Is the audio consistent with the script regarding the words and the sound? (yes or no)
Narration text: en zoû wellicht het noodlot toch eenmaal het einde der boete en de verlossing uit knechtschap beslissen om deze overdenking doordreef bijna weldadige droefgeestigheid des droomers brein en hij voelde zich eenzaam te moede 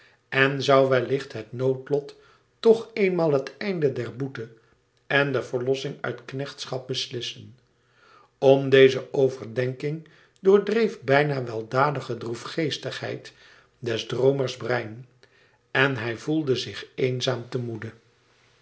yes